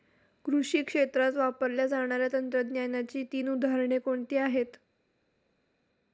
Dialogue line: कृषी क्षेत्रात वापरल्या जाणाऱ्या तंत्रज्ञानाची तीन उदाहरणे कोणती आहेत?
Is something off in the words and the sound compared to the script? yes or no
no